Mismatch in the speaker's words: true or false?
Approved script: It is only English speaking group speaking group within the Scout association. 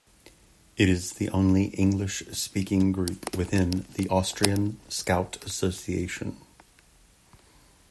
true